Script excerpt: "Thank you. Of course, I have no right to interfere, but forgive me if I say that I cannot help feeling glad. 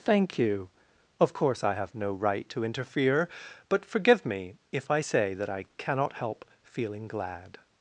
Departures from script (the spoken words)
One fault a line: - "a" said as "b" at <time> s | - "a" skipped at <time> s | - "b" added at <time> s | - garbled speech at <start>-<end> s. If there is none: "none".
none